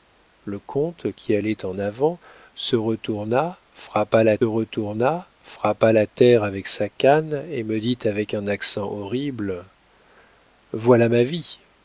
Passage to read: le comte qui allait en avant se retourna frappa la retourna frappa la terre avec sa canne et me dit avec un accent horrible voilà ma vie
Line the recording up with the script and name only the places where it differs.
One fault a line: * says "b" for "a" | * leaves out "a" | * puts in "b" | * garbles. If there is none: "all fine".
all fine